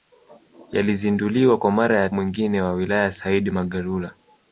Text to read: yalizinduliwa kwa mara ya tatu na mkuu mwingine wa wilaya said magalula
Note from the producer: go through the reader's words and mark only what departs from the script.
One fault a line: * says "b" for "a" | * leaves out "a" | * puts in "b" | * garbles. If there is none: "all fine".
* leaves out "tatu na mkuu"